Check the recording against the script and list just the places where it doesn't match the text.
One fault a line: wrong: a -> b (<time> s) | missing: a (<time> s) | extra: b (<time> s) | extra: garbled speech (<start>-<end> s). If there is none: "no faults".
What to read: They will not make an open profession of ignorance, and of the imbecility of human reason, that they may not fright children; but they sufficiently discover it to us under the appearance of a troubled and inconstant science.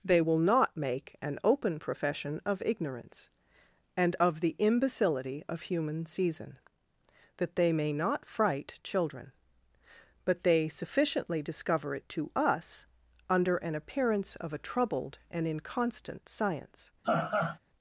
wrong: reason -> season (6.0 s)
wrong: the -> an (13.6 s)